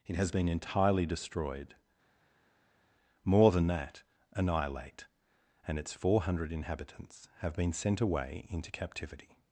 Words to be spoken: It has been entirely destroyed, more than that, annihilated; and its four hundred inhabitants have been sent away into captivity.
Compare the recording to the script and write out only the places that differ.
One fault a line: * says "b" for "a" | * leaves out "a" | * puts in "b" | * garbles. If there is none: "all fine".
* says "annihilate" for "annihilated"